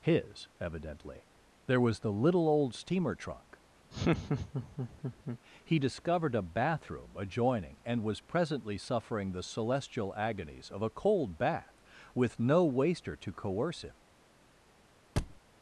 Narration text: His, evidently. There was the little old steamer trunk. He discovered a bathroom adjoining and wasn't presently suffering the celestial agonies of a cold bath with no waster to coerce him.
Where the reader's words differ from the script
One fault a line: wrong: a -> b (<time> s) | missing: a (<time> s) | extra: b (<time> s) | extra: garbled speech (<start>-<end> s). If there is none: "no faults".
wrong: wasn't -> was (8.0 s)